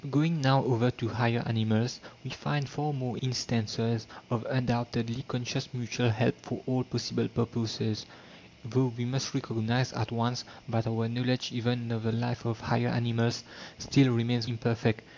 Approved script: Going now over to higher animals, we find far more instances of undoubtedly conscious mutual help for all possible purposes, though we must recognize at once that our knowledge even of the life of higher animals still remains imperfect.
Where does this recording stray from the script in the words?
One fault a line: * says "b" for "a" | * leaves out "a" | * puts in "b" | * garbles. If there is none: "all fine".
all fine